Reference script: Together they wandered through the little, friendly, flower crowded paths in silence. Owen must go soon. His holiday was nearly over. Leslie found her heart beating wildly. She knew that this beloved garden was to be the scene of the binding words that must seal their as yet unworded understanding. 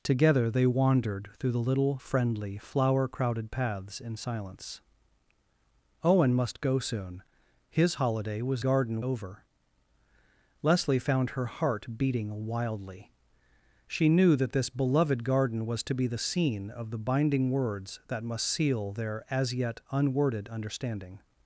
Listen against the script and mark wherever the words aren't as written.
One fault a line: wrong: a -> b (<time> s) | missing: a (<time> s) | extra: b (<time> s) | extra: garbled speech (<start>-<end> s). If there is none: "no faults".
wrong: nearly -> garden (8.6 s)